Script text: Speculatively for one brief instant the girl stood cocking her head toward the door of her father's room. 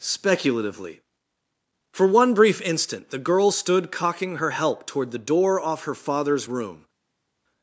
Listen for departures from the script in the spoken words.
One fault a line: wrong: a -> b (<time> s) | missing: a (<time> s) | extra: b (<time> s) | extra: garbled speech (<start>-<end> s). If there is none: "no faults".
wrong: head -> help (4.5 s)
wrong: of -> off (5.6 s)